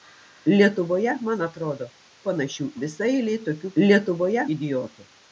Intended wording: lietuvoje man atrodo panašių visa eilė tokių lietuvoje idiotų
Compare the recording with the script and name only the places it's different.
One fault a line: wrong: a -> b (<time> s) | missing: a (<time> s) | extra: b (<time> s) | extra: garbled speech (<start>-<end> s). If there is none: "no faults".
no faults